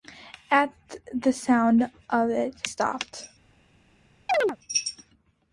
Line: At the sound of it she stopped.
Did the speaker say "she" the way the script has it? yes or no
no